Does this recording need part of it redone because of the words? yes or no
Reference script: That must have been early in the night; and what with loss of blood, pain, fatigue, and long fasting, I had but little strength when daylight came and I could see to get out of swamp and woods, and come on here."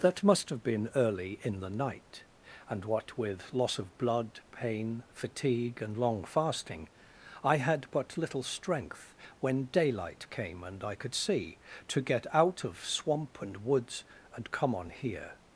no